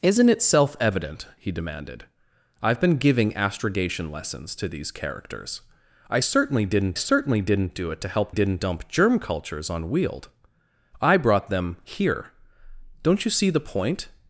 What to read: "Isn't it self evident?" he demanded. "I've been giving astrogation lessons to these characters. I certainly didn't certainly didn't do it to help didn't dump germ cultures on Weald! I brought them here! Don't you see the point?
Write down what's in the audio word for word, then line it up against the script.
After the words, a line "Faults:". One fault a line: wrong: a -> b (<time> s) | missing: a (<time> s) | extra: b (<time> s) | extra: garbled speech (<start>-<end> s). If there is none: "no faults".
"Isn't it self evident?" he demanded. "I've been giving astrogation lessons to these characters. I certainly didn't certainly didn't do it to help didn't dump germ cultures on Weald! I brought them here! Don't you see the point?
Faults:
no faults